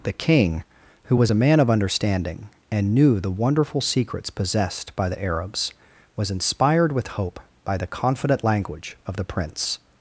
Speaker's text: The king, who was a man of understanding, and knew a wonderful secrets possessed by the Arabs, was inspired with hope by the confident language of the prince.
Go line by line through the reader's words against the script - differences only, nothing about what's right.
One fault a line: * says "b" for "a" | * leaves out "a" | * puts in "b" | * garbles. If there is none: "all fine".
* says "the" for "a"